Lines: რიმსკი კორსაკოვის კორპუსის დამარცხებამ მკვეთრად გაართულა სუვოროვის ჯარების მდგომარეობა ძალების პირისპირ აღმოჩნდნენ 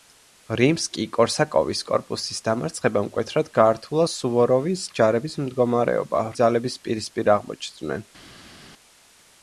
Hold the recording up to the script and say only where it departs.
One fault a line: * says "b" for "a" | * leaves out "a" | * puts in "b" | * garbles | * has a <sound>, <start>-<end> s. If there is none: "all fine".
all fine